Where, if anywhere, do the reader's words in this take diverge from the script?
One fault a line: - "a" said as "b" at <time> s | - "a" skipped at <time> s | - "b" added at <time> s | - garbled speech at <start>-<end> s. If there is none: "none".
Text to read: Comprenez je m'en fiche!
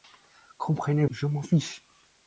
none